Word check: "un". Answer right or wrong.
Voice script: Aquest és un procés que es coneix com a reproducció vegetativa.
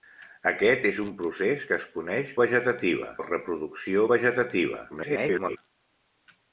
right